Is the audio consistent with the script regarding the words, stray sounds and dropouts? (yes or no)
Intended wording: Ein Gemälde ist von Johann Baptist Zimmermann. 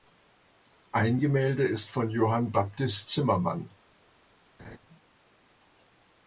no